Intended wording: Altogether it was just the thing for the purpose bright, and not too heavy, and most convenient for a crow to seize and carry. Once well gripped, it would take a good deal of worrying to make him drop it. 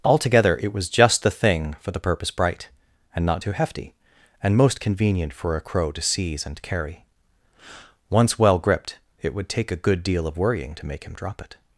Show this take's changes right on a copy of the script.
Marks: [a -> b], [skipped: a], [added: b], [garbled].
Altogether it was just the thing for the purpose bright, and not too [heavy, -> hefty] and most convenient for a crow to seize and carry. Once well gripped, it would take a good deal of worrying to make him drop it.